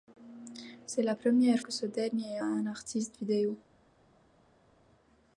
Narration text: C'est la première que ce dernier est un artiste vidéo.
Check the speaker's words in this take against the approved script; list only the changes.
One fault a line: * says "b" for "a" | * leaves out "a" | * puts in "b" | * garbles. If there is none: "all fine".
all fine